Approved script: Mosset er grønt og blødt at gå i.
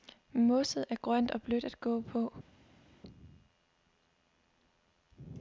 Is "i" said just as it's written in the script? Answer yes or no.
no